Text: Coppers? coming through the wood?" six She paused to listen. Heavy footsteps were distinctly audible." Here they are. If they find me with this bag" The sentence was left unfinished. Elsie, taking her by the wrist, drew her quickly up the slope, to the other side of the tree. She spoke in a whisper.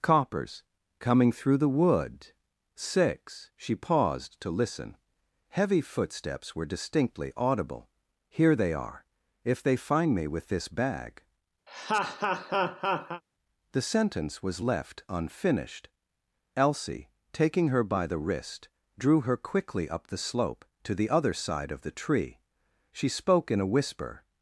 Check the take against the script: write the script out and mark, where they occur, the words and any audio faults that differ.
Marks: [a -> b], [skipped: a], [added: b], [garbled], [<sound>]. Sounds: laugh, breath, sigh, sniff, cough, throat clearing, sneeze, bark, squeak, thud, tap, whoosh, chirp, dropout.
Coppers? coming through the wood?" six She paused to listen. Heavy footsteps were distinctly audible." Here they are. If they find me with this bag" [laugh] The sentence was left unfinished. Elsie, taking her by the wrist, drew her quickly up the slope, to the other side of the tree. She spoke in a whisper.